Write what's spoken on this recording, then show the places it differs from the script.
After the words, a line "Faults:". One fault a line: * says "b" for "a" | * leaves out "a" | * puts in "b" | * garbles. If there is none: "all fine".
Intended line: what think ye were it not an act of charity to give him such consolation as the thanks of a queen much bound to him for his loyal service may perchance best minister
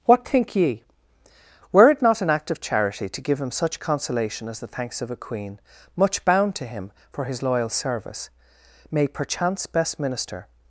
what think ye were it not an act of charity to give him such consolation as the thanks of a queen much bound to him for his loyal service may perchance best minister
Faults:
all fine